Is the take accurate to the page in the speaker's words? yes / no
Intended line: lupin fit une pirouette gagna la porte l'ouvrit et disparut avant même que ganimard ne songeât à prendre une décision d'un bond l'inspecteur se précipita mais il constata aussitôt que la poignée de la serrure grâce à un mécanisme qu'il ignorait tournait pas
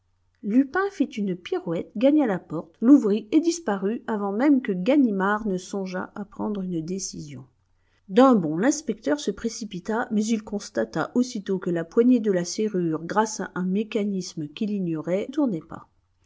yes